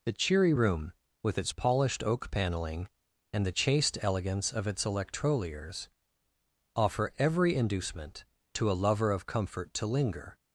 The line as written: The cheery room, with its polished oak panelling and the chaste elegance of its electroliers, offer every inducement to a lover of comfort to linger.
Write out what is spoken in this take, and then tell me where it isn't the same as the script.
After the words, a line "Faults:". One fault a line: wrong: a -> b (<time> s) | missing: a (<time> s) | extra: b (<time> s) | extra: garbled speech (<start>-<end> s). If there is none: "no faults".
The cheery room, with its polished oak panelling and the chaste elegance of its electroliers, offer every inducement to a lover of comfort to linger.
Faults:
no faults